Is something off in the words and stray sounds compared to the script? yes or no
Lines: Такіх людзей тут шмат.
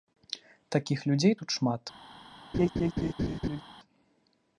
yes